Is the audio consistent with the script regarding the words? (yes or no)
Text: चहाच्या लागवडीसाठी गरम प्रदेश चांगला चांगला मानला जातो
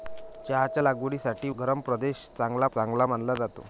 yes